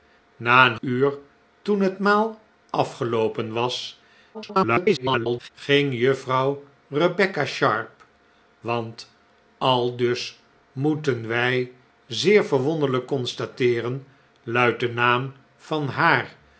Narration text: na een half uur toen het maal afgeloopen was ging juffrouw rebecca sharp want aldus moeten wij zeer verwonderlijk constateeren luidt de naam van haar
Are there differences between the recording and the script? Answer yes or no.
yes